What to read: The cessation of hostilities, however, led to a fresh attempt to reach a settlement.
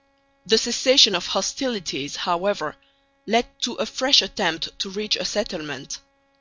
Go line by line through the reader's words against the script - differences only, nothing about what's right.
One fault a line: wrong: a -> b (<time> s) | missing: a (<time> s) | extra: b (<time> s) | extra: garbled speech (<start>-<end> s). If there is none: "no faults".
no faults